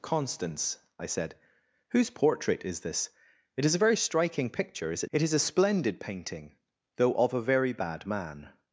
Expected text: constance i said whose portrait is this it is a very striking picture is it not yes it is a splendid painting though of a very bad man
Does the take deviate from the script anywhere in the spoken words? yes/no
yes